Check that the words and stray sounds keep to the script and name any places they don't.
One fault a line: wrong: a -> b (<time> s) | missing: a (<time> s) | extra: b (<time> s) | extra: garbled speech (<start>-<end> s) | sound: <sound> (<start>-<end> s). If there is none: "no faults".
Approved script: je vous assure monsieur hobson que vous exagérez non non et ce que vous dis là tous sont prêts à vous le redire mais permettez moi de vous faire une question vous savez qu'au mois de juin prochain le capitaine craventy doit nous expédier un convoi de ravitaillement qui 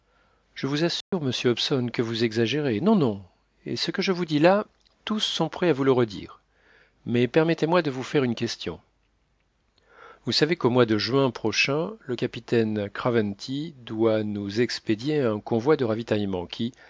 sound: dropout (1.0-1.1 s)
extra: je (4.0 s)